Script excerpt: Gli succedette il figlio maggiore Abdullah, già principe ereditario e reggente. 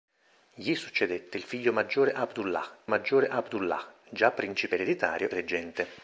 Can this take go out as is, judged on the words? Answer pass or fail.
fail